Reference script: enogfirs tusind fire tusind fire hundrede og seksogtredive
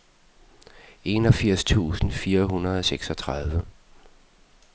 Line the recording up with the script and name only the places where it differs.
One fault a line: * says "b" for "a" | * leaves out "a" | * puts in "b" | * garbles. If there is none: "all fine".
* leaves out "tusind fire"